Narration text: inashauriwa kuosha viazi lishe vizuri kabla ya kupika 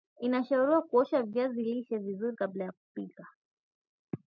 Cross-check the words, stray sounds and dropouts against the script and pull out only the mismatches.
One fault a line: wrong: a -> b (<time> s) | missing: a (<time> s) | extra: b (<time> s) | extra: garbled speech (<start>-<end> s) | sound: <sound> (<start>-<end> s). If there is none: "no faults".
no faults